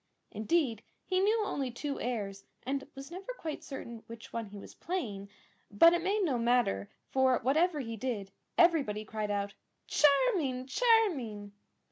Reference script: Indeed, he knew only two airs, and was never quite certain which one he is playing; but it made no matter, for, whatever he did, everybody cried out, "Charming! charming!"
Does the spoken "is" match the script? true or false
false